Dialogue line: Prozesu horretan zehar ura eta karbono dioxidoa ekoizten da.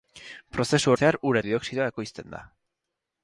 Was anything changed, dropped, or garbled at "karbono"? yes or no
yes